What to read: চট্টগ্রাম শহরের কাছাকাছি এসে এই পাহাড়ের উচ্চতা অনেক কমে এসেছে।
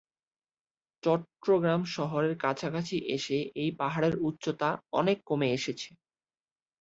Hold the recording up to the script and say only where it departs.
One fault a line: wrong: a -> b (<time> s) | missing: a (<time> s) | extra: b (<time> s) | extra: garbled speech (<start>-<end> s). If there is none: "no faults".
no faults